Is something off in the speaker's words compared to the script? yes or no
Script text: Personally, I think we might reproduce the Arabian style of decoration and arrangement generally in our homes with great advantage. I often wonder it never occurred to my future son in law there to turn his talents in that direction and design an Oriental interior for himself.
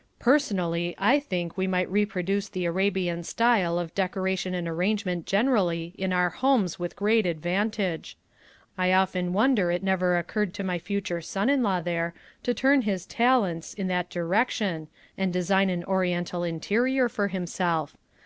no